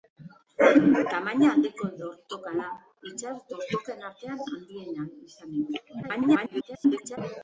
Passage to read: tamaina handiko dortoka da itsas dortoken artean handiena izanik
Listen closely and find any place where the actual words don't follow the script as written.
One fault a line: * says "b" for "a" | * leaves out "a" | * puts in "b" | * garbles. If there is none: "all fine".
* garbles